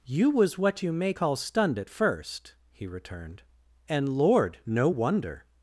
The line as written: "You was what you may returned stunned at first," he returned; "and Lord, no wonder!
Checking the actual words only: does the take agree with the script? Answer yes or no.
no